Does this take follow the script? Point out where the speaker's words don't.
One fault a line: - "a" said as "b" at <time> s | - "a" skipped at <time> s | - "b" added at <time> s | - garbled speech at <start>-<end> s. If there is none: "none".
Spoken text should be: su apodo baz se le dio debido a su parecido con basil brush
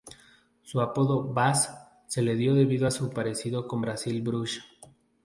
none